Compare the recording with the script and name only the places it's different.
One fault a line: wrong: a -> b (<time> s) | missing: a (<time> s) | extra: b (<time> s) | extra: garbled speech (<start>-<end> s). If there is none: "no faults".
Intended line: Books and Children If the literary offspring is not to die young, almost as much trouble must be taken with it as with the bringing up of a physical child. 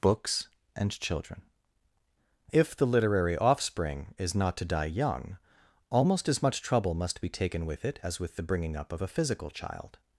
no faults